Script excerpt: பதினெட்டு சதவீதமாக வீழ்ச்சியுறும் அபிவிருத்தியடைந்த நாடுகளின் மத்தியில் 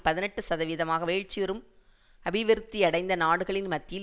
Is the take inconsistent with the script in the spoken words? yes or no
no